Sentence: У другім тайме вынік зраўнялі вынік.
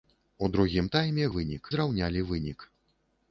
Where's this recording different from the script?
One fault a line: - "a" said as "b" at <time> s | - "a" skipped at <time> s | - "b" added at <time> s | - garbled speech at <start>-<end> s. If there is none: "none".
none